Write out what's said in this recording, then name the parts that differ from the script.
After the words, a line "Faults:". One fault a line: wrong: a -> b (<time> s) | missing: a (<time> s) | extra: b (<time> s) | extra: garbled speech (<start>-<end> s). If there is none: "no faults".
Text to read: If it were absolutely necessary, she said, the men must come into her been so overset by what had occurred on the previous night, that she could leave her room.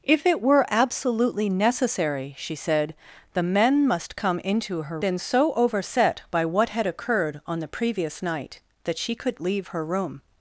If it were absolutely necessary, she said, the men must come into her been so overset by what had occurred on the previous night, that she could leave her room.
Faults:
no faults